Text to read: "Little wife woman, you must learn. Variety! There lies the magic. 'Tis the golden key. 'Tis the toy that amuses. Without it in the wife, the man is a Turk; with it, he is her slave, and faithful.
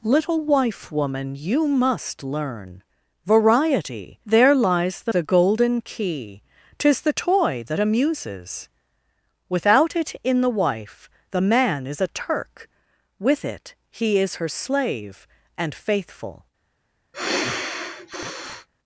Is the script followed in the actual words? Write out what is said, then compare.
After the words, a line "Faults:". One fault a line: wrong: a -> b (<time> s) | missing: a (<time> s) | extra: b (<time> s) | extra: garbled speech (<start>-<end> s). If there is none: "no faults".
"Little wife woman, you must learn. Variety! There lies the the golden key. 'Tis the toy that amuses. Without it in the wife, the man is a Turk; with it, he is her slave, and faithful.
Faults:
missing: magic Tis (5.1 s)